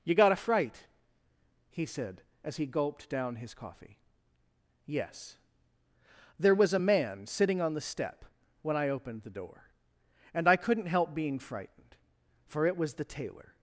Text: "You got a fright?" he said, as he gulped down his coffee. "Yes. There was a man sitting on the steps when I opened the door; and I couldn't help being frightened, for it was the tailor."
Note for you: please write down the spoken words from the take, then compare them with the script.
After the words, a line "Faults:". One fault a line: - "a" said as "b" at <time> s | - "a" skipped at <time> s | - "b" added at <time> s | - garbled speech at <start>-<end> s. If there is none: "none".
"You got a fright?" he said, as he gulped down his coffee. "Yes. There was a man sitting on the step when I opened the door; and I couldn't help being frightened, for it was the tailor."
Faults:
- "steps" said as "step" at 7.8 s